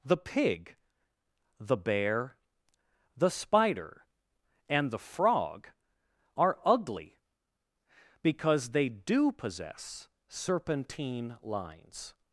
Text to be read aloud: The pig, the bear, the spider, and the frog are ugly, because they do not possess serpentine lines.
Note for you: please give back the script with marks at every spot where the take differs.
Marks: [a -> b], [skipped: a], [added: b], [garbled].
The pig, the bear, the spider, and the frog are ugly, because they do [skipped: not] possess serpentine lines.